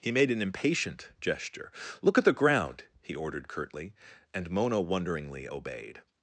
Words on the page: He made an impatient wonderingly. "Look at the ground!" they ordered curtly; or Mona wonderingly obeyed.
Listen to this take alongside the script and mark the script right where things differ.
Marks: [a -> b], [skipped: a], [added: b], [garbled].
He made an impatient [wonderingly. -> gesture] "Look at the ground!" [they -> he] ordered curtly; [or -> and] Mona wonderingly obeyed.